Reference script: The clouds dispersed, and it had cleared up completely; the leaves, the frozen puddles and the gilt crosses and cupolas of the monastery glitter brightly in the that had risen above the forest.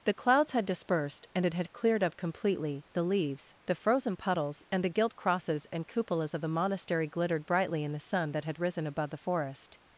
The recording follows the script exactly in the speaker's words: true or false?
false